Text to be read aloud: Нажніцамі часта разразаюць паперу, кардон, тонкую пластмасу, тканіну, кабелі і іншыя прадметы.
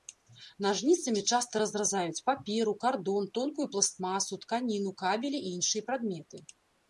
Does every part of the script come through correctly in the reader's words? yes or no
yes